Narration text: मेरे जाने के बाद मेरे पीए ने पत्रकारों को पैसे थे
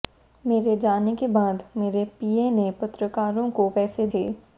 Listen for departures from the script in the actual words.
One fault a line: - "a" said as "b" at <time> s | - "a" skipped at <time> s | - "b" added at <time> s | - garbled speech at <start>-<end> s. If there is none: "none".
none